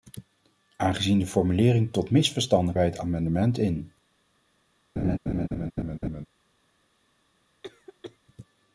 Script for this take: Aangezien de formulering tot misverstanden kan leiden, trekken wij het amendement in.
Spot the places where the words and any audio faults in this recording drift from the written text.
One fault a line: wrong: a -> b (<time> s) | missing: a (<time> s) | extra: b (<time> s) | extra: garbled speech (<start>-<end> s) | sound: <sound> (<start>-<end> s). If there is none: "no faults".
missing: kan leiden trekken (2.8 s)
sound: laugh (5.0-6.3 s)
sound: cough (7.6-8.2 s)